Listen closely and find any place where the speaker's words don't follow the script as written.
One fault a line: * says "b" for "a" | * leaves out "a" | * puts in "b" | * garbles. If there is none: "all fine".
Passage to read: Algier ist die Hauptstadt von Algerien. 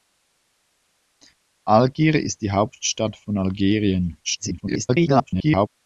* garbles